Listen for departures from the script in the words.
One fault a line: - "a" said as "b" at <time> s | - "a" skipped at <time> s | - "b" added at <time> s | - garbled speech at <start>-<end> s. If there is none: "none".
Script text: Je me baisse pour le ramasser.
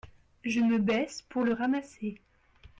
none